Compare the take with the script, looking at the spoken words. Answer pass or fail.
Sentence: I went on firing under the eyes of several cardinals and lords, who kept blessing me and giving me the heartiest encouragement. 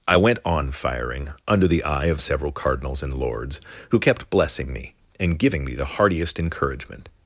fail